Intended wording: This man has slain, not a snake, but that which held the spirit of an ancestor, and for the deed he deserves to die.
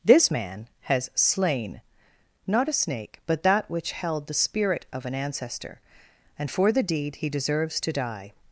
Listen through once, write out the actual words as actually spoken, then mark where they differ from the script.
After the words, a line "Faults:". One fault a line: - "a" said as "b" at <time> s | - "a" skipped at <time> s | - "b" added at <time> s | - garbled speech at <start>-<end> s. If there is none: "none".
This man has slain, not a snake, but that which held the spirit of an ancestor, and for the deed he deserves to die.
Faults:
none